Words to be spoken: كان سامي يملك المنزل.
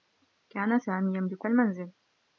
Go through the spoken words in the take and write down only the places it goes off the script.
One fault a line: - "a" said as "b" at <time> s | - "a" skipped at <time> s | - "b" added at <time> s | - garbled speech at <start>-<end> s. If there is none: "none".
none